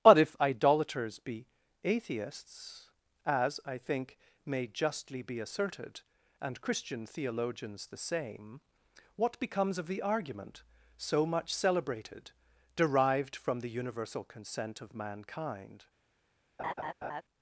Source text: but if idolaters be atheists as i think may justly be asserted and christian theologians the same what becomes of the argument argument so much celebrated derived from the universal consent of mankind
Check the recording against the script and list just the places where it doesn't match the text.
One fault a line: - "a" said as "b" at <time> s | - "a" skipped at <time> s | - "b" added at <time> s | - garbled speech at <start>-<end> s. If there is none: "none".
- "argument" skipped at 10.6 s